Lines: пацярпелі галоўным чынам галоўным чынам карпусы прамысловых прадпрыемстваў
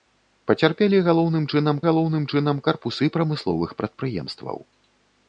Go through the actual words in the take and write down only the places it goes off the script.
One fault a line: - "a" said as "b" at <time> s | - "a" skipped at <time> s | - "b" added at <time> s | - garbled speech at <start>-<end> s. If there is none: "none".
none